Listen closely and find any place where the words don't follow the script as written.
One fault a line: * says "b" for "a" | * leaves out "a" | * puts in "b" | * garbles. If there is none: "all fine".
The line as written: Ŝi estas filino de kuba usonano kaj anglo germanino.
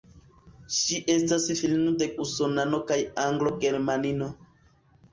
* leaves out "kuba"